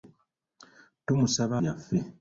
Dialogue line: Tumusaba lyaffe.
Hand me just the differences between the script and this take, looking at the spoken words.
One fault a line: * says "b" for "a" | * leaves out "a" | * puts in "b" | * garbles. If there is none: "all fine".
all fine